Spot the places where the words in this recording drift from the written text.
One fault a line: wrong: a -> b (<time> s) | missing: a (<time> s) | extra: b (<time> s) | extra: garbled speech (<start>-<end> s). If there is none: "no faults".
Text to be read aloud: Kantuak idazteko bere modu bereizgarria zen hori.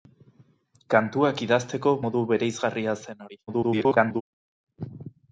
missing: bere (1.9 s)
extra: garbled speech (3.5-4.2 s)